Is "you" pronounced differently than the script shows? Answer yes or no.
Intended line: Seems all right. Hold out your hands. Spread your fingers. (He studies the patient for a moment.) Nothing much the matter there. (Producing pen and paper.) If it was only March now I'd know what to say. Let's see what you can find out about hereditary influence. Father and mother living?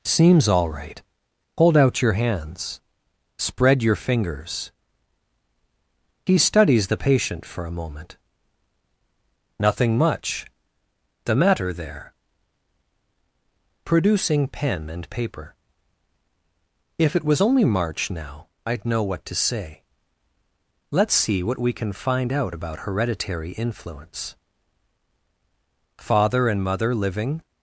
yes